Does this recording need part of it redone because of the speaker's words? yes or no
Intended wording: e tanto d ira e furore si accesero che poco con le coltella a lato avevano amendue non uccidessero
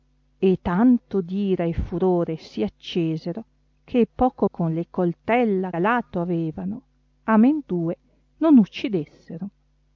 no